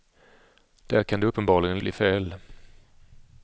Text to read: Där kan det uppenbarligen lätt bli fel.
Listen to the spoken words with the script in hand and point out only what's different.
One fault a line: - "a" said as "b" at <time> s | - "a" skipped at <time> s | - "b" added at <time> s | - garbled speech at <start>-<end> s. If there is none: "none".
- "lätt" skipped at 1.8 s